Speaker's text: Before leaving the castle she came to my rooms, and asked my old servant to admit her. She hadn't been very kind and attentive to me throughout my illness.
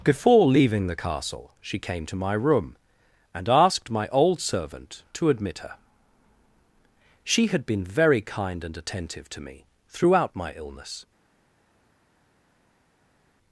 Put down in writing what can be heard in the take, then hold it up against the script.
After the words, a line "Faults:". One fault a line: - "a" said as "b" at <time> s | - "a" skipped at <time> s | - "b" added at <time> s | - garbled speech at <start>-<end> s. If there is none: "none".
Before leaving the castle she came to my room, and asked my old servant to admit her. She had been very kind and attentive to me throughout my illness.
Faults:
- "rooms" said as "room" at 2.3 s
- "hadn't" said as "had" at 7.5 s